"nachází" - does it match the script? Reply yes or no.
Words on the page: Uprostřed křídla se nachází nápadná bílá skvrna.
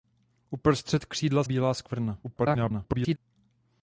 no